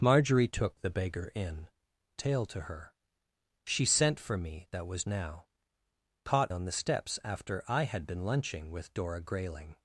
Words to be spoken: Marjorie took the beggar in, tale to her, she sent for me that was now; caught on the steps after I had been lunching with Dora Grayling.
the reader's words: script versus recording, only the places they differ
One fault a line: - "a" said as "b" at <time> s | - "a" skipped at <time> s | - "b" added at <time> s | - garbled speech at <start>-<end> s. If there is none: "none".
none